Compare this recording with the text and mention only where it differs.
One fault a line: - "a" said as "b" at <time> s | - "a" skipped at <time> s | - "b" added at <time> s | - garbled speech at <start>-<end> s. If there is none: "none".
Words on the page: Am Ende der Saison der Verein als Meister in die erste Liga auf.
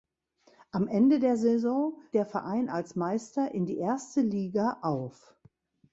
none